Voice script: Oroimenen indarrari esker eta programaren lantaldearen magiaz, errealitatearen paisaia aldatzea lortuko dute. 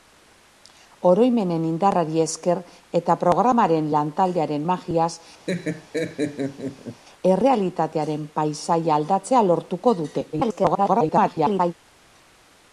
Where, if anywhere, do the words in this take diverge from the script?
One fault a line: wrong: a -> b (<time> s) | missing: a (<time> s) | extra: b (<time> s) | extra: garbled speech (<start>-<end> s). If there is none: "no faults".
extra: garbled speech (10.3-11.7 s)